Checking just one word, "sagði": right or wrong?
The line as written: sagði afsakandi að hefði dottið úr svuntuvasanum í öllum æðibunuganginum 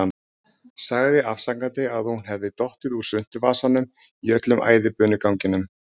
right